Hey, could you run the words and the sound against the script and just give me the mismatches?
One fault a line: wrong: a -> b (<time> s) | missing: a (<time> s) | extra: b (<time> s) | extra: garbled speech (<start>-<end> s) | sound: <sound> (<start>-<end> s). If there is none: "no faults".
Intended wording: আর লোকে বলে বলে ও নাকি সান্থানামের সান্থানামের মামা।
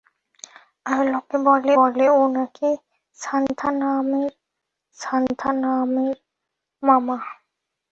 no faults